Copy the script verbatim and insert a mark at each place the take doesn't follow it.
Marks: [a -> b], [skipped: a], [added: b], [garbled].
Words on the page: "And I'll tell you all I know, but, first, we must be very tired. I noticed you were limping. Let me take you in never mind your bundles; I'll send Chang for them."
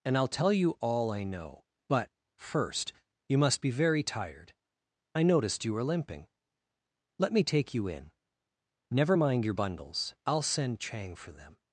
"And I'll tell you all I know, but, first, [we -> you] must be very tired. I noticed you were limping. Let me take you in never mind your bundles; I'll send Chang for them."